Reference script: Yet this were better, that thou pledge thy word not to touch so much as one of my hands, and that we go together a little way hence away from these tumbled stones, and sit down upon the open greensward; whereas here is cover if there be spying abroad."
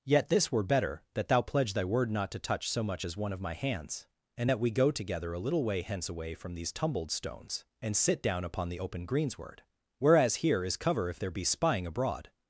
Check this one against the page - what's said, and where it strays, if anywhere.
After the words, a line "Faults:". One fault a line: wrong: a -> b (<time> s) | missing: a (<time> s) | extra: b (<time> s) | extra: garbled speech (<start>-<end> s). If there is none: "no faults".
Yet this were better, that thou pledge thy word not to touch so much as one of my hands, and that we go together a little way hence away from these tumbled stones, and sit down upon the open greensward; whereas here is cover if there be spying abroad."
Faults:
no faults